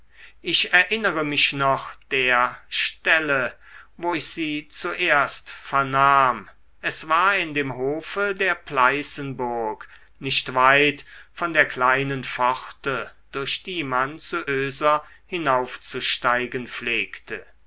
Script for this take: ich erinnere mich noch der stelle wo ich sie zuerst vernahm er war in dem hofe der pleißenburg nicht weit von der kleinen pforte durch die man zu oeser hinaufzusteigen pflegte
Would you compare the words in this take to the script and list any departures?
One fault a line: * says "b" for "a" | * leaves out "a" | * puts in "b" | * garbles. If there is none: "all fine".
* says "es" for "er"